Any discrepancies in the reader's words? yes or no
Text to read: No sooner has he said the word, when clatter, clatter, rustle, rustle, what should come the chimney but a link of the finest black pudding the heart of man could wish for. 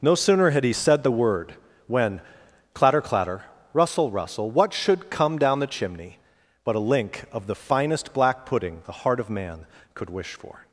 yes